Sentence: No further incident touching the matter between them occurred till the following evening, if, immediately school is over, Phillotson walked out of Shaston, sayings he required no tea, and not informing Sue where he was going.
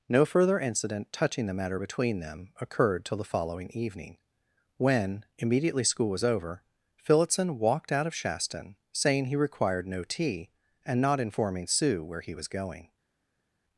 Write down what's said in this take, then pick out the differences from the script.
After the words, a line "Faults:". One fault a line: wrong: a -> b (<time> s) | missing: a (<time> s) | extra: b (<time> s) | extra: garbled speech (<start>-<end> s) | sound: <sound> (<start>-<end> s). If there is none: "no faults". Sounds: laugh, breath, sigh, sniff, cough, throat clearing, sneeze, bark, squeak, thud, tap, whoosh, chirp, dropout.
No further incident touching the matter between them occurred till the following evening, when, immediately school was over, Phillotson walked out of Shaston, saying he required no tea, and not informing Sue where he was going.
Faults:
wrong: if -> when (4.8 s)
wrong: is -> was (6.1 s)
wrong: sayings -> saying (8.9 s)